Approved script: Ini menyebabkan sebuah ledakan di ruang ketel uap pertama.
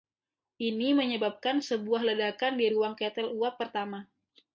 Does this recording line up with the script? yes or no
yes